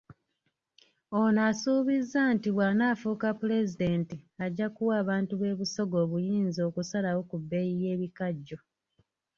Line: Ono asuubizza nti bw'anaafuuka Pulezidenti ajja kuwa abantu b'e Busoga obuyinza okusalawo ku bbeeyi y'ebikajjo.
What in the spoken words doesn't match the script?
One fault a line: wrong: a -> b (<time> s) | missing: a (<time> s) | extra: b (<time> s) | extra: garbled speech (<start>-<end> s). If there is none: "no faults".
no faults